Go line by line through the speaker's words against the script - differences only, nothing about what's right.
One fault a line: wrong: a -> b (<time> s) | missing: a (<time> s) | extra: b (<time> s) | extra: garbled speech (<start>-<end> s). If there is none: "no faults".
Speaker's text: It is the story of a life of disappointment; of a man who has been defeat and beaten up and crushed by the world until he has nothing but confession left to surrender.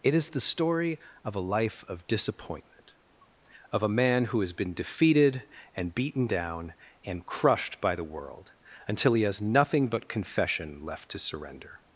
wrong: defeat -> defeated (4.7 s)
wrong: up -> down (6.3 s)